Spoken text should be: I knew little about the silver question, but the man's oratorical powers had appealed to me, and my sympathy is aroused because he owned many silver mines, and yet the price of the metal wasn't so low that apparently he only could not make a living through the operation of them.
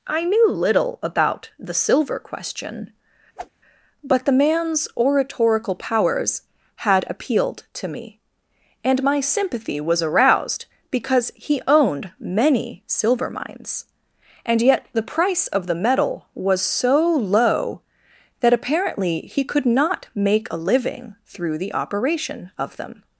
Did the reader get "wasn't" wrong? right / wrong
wrong